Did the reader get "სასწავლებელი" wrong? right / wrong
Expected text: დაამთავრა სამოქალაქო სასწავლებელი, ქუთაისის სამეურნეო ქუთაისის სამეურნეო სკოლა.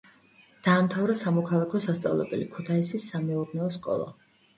right